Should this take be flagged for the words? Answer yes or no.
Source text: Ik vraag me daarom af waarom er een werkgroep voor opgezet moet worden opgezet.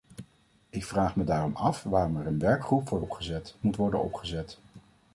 no